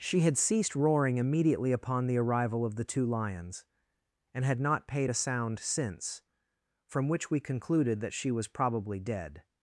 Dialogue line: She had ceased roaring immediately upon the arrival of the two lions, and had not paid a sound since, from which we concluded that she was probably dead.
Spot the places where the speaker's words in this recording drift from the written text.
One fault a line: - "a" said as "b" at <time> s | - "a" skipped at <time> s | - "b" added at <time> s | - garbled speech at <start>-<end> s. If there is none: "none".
none